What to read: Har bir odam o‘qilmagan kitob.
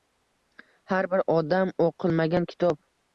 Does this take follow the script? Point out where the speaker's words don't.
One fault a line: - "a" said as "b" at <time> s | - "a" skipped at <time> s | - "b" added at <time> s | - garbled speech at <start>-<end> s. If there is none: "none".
none